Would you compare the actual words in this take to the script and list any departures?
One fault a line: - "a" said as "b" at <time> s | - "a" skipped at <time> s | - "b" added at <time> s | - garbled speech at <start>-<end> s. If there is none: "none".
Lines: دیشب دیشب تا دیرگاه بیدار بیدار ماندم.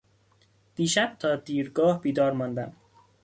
- "دیشب" skipped at 1.1 s
- "بیدار" skipped at 2.3 s